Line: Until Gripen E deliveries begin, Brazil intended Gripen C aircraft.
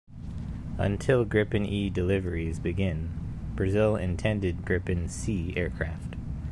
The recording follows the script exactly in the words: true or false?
true